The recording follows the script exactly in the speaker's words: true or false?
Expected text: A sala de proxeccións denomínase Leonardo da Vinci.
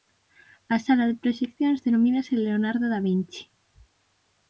true